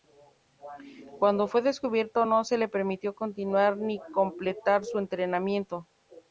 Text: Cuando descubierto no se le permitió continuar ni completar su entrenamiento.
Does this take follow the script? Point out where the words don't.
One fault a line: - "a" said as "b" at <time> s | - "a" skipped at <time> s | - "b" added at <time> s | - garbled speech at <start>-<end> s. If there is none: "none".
- "fue" added at 1.5 s